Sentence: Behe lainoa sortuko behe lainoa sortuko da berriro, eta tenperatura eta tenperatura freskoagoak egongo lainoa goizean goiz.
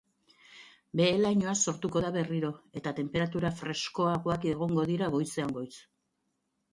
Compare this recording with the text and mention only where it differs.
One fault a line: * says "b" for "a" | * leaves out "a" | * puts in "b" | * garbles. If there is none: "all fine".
* leaves out "behe lainoa sortuko"
* leaves out "eta tenperatura"
* says "dira" for "lainoa"